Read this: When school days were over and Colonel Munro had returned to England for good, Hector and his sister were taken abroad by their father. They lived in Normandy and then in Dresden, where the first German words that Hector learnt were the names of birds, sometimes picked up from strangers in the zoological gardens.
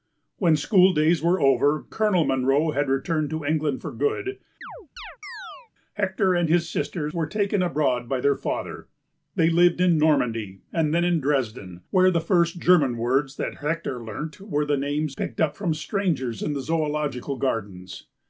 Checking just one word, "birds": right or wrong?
wrong